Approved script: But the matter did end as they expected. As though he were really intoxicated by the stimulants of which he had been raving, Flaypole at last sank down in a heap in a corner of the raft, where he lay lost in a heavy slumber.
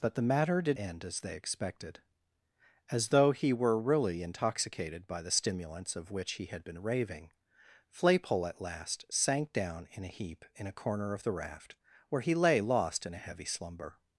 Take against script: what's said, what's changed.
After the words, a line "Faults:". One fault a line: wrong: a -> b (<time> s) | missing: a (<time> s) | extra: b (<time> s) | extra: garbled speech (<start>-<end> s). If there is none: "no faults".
But the matter did end as they expected. As though he were really intoxicated by the stimulants of which he had been raving, Flaypole at last sank down in a heap in a corner of the raft, where he lay lost in a heavy slumber.
Faults:
no faults